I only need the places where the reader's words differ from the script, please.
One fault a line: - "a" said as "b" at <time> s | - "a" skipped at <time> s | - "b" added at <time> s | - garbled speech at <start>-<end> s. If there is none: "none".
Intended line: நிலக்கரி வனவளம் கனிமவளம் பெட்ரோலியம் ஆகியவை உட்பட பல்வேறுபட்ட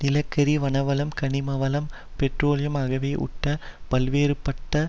none